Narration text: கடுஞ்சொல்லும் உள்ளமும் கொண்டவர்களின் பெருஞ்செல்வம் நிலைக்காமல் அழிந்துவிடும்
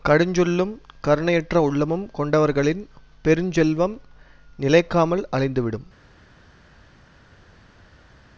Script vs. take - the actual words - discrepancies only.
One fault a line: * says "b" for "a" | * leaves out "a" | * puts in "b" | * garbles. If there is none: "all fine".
* puts in "கருணையற்ற"